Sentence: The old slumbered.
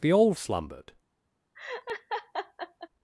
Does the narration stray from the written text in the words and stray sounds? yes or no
yes